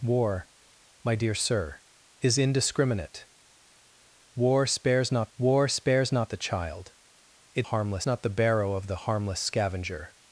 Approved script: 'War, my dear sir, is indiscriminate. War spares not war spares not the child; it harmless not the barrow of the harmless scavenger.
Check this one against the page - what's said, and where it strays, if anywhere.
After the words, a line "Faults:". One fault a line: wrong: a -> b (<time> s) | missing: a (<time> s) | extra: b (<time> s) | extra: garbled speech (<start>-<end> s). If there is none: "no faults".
'War, my dear sir, is indiscriminate. War spares not war spares not the child; it harmless not the barrow of the harmless scavenger.
Faults:
no faults